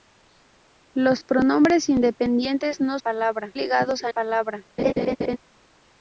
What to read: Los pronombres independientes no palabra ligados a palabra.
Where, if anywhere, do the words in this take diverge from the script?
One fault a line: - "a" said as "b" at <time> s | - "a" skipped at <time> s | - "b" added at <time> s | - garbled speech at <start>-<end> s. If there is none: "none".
none